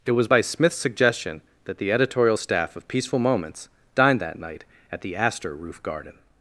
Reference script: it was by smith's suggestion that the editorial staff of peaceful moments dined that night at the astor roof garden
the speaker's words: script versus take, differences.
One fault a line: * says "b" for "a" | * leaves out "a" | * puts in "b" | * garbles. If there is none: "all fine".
all fine